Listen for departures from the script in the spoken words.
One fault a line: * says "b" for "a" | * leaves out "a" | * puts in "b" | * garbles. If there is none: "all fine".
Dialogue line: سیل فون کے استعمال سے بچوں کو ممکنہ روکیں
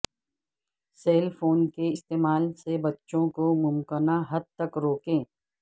* puts in "حد تک"